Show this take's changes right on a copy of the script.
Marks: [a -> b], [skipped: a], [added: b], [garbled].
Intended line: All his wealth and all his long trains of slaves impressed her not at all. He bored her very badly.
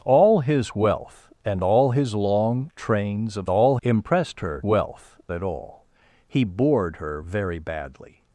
All his wealth and all his long trains of [slaves -> all] impressed her [not -> wealth] at all. He bored her very badly.